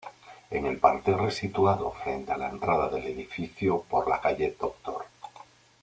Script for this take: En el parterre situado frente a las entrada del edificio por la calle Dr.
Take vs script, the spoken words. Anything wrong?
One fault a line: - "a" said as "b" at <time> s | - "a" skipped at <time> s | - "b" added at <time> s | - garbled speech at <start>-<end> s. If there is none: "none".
- "las" said as "la" at 2.4 s